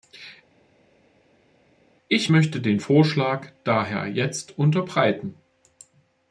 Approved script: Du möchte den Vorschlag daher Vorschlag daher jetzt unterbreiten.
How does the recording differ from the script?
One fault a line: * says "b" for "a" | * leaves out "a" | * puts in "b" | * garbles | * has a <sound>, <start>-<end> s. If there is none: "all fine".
* says "Ich" for "Du"
* leaves out "Vorschlag daher"